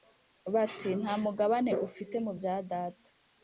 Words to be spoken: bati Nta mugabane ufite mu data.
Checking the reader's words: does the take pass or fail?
fail